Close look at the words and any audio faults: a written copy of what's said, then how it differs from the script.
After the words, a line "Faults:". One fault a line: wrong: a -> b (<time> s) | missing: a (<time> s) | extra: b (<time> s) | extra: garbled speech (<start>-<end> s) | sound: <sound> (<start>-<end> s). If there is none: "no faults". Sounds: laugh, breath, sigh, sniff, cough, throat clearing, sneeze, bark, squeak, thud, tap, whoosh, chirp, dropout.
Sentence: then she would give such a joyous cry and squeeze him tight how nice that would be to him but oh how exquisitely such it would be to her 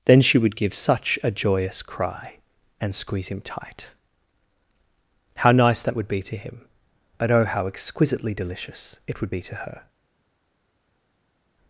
then she would give such a joyous cry and squeeze him tight how nice that would be to him but oh how exquisitely delicious it would be to her
Faults:
wrong: such -> delicious (8.3 s)